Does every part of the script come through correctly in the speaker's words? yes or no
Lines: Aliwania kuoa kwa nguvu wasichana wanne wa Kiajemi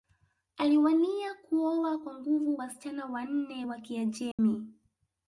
yes